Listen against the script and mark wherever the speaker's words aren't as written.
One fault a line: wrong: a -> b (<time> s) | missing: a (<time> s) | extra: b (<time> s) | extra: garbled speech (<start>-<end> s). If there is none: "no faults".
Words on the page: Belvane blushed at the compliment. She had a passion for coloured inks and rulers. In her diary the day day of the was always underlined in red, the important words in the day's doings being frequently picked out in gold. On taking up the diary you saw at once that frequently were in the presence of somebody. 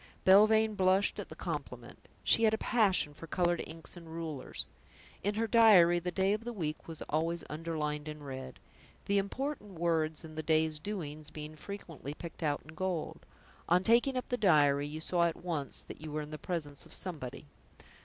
missing: day (6.3 s)
extra: week (6.5 s)
wrong: frequently -> you (16.0 s)